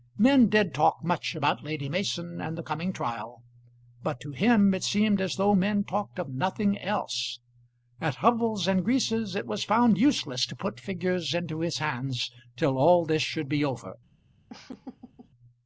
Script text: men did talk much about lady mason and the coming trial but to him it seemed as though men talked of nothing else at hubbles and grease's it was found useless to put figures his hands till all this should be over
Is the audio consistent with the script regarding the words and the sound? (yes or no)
no